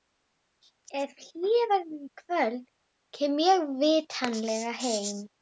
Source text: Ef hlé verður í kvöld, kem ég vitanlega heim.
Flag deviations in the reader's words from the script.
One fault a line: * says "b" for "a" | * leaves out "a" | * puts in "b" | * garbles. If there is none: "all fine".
all fine